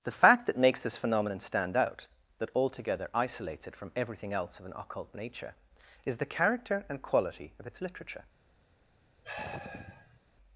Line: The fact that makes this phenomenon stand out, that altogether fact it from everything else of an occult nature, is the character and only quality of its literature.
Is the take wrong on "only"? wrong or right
wrong